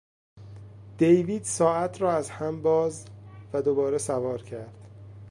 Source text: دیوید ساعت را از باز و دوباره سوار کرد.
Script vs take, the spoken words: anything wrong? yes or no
yes